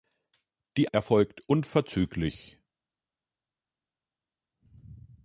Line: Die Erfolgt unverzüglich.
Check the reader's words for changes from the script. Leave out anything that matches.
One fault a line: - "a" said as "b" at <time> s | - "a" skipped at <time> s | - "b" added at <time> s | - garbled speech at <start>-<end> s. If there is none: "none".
none